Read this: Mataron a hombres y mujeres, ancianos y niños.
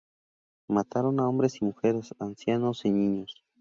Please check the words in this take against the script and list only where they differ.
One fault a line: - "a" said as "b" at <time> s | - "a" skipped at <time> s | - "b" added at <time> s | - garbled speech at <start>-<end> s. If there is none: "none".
none